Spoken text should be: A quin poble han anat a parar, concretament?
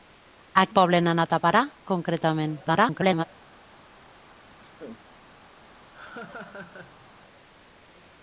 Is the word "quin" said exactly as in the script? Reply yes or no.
no